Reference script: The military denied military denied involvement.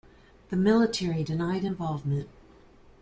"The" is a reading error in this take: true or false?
false